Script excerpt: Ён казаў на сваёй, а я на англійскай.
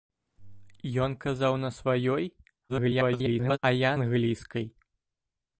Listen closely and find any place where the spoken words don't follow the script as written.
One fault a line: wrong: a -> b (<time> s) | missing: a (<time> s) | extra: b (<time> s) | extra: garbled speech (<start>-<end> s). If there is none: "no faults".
extra: garbled speech (2.7-3.6 s)
missing: на (3.9 s)